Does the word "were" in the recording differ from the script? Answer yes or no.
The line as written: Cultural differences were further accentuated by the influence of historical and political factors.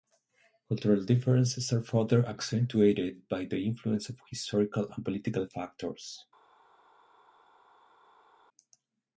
yes